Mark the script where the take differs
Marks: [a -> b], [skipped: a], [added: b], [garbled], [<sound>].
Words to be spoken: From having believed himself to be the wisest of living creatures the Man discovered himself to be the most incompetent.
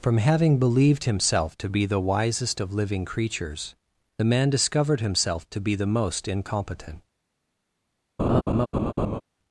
From having believed himself to be the wisest of living creatures the Man discovered himself to be the most incompetent. [laugh]